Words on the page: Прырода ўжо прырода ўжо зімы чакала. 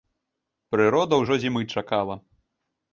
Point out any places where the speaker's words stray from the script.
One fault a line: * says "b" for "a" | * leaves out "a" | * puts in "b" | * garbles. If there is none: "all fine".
* leaves out "прырода ўжо"